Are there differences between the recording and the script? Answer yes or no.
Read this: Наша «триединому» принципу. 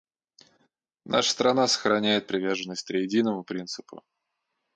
yes